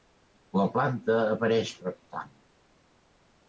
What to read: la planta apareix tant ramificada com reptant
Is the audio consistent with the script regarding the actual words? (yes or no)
no